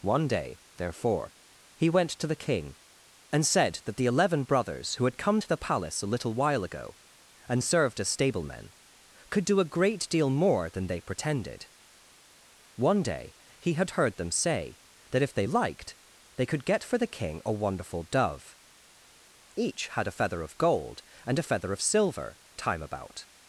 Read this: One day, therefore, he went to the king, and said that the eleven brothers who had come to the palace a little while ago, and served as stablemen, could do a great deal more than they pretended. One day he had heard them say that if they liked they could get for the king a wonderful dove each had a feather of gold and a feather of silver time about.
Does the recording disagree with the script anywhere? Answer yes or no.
no